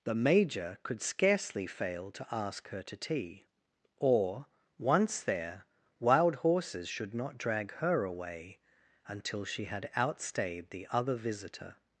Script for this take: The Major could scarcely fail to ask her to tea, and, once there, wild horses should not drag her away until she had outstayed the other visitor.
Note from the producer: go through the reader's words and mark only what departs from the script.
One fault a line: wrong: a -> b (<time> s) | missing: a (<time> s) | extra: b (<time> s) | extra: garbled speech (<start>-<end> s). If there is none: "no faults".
wrong: and -> or (4.0 s)